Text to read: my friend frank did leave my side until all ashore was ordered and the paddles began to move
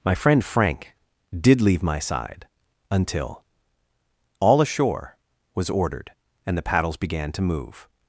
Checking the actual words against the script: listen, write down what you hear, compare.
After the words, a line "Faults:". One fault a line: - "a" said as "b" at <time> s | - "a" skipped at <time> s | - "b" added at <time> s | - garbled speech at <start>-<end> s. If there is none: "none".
my friend frank did leave my side until all ashore was ordered and the paddles began to move
Faults:
none